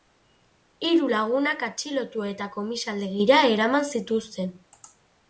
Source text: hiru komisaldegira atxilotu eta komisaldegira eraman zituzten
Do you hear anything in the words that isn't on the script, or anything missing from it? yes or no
yes